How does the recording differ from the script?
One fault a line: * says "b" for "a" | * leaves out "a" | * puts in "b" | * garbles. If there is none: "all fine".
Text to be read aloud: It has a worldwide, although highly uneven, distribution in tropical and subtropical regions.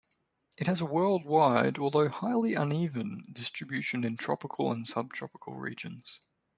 all fine